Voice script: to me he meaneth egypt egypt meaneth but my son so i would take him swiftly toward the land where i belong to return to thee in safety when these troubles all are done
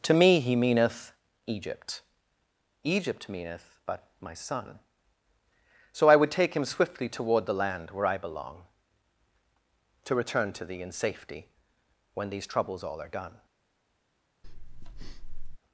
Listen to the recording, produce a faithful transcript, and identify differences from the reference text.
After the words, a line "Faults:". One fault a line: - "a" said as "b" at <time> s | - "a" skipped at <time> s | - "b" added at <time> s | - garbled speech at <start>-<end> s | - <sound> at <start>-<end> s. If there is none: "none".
to me he meaneth egypt egypt meaneth but my son so i would take him swiftly toward the land where i belong to return to thee in safety when these troubles all are done
Faults:
- breath at 14.4-15.6 s